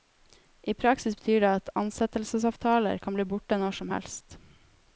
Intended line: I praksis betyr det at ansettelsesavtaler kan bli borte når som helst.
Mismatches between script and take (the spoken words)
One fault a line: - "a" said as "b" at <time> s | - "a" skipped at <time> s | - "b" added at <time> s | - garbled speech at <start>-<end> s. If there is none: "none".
none